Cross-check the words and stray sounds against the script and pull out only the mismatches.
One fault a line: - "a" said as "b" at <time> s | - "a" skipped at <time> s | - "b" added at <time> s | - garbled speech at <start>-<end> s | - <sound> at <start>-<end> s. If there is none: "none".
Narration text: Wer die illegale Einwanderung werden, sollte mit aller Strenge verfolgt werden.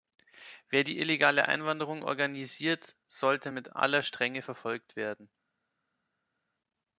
- "werden" said as "organisiert" at 2.0 s